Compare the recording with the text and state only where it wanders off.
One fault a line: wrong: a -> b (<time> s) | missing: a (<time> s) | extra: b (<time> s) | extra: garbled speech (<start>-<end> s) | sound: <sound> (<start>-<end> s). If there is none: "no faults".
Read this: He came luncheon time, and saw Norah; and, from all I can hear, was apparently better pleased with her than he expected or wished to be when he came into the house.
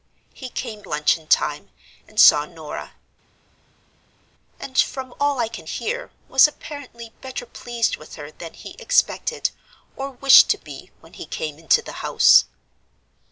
no faults